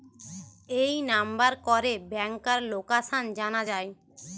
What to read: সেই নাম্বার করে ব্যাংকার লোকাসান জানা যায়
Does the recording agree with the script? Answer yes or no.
no